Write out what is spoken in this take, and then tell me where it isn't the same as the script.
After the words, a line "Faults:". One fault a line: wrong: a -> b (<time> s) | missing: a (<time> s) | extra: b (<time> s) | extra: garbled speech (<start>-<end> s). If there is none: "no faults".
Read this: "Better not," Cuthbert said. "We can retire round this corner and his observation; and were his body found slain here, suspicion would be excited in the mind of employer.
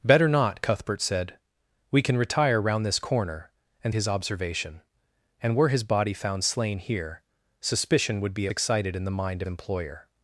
"Better not," Cuthbert said. "We can retire round this corner and his observation; and were his body found slain here, suspicion would be excited in the mind of employer.
Faults:
no faults